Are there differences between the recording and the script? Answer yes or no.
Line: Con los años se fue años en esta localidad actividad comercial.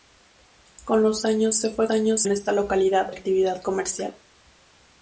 no